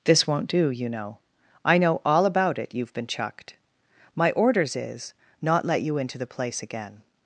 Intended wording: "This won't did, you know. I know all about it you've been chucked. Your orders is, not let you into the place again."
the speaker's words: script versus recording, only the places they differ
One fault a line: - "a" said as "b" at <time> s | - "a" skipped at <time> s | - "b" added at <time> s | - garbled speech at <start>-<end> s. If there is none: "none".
- "did" said as "do" at 0.5 s
- "Your" said as "My" at 4.2 s